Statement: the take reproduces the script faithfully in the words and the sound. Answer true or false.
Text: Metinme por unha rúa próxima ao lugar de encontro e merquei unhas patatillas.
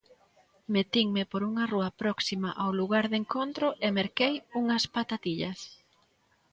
true